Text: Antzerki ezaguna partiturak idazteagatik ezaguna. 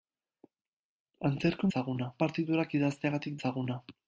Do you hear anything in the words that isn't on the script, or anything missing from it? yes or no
no